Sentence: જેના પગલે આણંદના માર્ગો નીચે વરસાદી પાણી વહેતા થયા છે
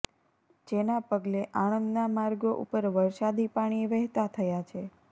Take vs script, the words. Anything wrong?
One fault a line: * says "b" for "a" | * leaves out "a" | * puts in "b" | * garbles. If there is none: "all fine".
* says "ઉપર" for "નીચે"